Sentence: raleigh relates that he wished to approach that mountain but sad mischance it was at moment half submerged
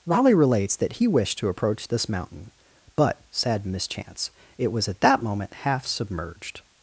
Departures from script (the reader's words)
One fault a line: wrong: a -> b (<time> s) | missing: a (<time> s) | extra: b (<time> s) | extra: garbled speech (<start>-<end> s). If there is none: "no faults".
wrong: that -> this (1.9 s)
extra: that (5.0 s)